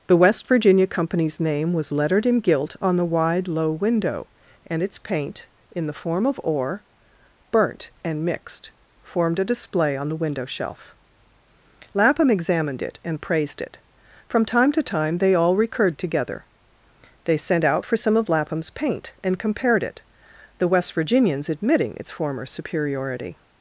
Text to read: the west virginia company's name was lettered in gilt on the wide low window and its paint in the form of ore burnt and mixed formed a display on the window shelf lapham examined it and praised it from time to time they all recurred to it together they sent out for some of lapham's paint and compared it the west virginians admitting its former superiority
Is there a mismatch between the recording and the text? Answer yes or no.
yes